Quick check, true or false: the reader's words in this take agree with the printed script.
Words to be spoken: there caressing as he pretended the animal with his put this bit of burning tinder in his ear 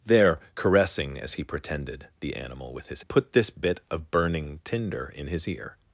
true